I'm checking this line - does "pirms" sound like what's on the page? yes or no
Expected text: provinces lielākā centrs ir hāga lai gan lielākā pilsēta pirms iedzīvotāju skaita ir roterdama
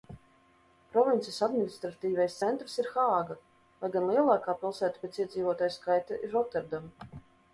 no